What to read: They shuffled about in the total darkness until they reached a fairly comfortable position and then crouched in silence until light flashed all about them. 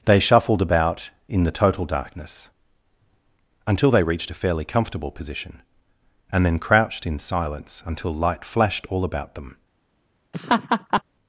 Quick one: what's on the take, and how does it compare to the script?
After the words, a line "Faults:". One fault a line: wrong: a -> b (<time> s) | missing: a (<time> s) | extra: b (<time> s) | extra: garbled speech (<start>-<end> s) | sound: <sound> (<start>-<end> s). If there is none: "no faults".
They shuffled about in the total darkness until they reached a fairly comfortable position and then crouched in silence until light flashed all about them.
Faults:
sound: laugh (10.3-11.0 s)